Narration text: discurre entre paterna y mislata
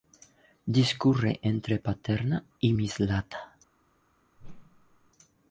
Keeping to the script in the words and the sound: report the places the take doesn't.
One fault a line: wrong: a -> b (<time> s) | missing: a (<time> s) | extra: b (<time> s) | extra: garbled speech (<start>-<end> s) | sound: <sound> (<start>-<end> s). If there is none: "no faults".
sound: whoosh (4.4-5.1 s)